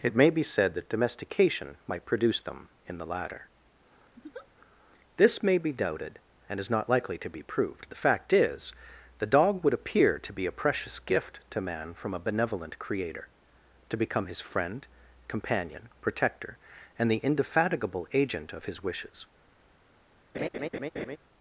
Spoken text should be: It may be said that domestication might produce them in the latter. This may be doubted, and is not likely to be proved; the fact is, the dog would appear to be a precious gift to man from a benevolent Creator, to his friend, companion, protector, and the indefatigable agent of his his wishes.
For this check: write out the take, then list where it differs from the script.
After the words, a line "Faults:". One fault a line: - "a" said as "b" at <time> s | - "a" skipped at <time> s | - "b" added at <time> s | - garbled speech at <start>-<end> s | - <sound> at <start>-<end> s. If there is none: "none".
It may be said that domestication might produce them in the latter. This may be doubted, and is not likely to be proved; the fact is, the dog would appear to be a precious gift to man from a benevolent Creator, to become his friend, companion, protector, and the indefatigable agent of his wishes.
Faults:
- laugh at 4.2-4.5 s
- "become" added at 14.0 s
- "his" skipped at 18.8 s
- laugh at 20.3-21.2 s